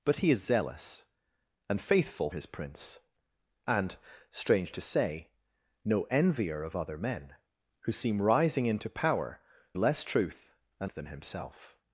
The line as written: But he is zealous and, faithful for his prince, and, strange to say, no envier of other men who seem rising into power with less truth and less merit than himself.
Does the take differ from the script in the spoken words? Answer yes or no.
yes